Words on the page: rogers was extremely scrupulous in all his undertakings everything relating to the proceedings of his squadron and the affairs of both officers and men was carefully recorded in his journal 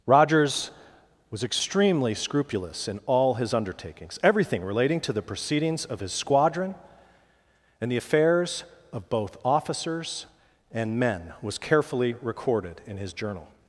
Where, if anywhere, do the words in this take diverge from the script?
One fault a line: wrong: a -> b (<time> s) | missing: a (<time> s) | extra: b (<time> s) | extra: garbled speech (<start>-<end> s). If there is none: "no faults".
no faults